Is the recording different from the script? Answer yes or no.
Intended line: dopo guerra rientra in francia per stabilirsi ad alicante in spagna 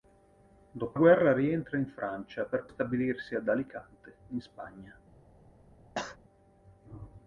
no